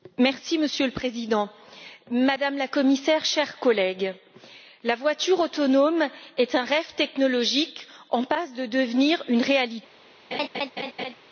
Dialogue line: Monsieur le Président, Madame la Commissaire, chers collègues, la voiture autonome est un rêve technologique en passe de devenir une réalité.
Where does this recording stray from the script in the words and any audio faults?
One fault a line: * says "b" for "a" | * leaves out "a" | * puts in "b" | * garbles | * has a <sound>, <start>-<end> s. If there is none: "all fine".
* has a laugh, 10.3-11.1 s